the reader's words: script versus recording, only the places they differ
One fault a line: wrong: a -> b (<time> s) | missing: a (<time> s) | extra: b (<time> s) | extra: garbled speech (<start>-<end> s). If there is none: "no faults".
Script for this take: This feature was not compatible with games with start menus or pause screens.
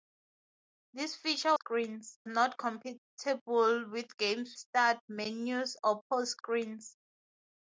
wrong: was -> screens (1.5 s)
missing: with (4.6 s)